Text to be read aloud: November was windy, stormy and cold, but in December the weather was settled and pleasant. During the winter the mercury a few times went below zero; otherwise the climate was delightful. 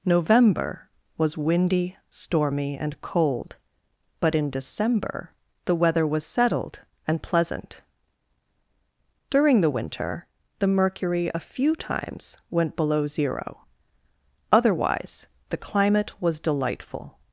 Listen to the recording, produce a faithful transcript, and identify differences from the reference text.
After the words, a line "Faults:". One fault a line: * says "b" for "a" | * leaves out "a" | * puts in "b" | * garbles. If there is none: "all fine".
November was windy, stormy and cold, but in December the weather was settled and pleasant. During the winter the mercury a few times went below zero; otherwise the climate was delightful.
Faults:
all fine